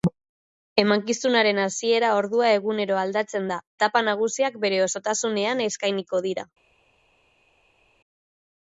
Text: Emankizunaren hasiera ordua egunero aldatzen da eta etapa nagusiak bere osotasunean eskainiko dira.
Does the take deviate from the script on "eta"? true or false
true